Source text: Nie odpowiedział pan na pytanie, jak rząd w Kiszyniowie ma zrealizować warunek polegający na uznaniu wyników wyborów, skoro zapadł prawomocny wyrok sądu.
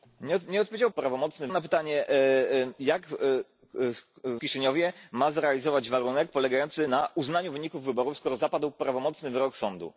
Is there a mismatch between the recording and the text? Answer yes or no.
yes